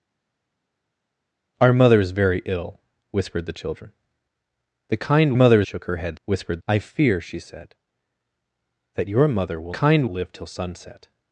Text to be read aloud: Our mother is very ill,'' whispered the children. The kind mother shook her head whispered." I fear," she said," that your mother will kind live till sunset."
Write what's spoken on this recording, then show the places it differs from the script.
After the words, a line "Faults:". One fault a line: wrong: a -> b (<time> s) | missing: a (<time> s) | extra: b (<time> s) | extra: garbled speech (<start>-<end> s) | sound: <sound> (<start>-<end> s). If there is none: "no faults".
Our mother is very ill,'' whispered the children. The kind mother shook her head whispered." I fear," she said," that your mother will kind live till sunset."
Faults:
no faults